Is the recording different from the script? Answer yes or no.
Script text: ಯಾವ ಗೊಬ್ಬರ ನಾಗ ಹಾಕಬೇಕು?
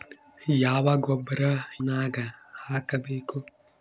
no